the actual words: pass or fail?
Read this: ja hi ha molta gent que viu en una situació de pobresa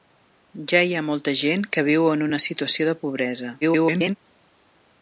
fail